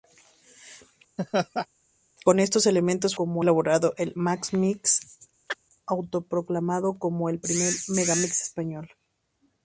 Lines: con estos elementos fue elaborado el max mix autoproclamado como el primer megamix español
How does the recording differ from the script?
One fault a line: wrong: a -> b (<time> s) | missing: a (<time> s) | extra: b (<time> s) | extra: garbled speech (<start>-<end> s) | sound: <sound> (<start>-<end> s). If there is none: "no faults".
sound: laugh (1.2-1.7 s)
wrong: fue -> como (3.1 s)
sound: chirp (5.5-5.6 s)